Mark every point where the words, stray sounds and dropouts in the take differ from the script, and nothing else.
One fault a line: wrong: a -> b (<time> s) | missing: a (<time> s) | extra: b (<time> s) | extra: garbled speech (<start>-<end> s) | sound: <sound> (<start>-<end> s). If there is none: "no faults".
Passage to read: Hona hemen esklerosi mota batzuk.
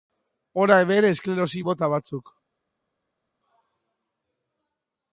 no faults